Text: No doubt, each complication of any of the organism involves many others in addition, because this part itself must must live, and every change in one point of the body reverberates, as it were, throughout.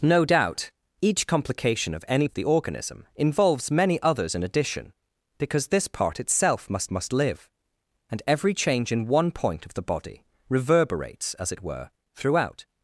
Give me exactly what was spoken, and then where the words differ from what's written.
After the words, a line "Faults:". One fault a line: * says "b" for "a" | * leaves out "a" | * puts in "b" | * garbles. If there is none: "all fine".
No doubt, each complication of any of the organism involves many others in addition, because this part itself must must live, and every change in one point of the body reverberates, as it were, throughout.
Faults:
all fine